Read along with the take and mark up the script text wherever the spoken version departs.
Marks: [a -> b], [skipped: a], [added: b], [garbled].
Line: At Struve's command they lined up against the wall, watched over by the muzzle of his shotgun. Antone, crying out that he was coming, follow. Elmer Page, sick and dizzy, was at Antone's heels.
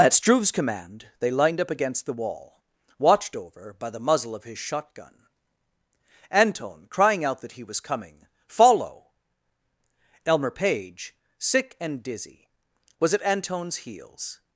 At Struve's command they lined up against the wall, watched over by the muzzle of his shotgun. Antone, crying out that he was coming, follow. Elmer Page, sick and dizzy, was at Antone's heels.